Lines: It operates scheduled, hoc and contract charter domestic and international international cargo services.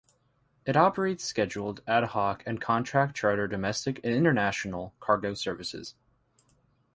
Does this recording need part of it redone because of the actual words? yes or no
yes